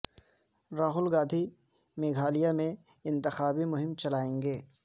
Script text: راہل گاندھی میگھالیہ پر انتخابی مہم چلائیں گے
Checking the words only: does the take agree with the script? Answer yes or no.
no